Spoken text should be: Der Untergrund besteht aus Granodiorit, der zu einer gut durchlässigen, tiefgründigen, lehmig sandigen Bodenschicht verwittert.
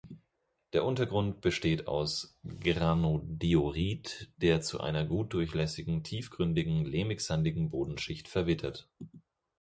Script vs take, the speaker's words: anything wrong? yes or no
no